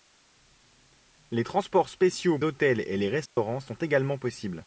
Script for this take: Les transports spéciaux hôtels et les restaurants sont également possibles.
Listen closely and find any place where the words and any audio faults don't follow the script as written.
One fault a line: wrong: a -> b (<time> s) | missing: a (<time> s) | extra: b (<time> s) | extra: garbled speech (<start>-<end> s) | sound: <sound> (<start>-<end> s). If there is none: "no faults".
sound: dropout (3.3-3.4 s)